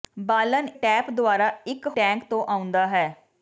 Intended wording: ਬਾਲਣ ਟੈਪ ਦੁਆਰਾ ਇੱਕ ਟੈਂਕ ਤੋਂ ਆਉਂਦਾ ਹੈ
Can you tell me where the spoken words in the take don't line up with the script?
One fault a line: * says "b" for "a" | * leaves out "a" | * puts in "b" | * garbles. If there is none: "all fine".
all fine